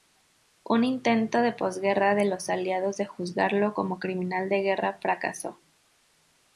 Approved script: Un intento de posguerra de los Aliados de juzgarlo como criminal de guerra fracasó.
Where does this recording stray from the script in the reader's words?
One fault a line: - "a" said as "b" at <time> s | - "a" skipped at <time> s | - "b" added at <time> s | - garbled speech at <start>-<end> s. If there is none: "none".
none